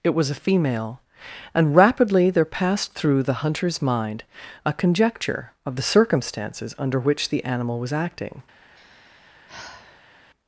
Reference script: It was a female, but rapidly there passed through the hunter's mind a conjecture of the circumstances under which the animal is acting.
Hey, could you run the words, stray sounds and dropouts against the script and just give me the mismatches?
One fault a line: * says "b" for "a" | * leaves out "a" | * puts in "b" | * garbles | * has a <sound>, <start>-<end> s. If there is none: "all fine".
* says "and" for "but"
* says "was" for "is"
* has a sigh, 8.7-10.1 s